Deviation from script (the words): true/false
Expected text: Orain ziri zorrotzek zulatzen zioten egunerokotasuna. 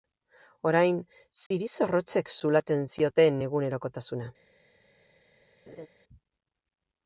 false